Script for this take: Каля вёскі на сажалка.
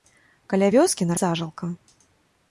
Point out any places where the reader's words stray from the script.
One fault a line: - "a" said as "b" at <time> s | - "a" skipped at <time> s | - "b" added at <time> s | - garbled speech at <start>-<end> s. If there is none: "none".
none